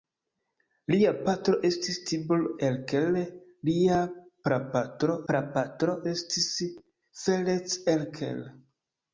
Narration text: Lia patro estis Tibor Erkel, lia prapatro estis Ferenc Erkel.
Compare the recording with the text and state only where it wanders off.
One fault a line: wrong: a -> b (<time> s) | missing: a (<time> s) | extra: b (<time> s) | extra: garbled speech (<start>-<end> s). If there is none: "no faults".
extra: prapatro (5.3 s)